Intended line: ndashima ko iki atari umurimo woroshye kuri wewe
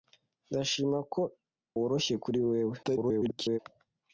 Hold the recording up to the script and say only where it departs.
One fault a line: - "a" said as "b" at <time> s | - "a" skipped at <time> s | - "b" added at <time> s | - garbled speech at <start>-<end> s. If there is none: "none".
- "iki atari umurimo" skipped at 1.2 s
- garbled speech at 2.8-3.6 s